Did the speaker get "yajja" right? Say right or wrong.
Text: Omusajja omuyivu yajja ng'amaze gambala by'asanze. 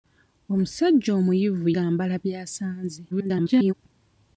wrong